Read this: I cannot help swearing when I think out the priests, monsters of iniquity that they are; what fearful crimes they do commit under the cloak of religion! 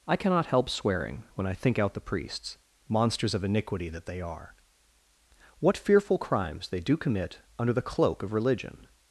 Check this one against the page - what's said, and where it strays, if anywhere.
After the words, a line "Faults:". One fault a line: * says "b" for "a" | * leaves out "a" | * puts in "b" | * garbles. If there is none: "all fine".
I cannot help swearing when I think out the priests, monsters of iniquity that they are; what fearful crimes they do commit under the cloak of religion!
Faults:
all fine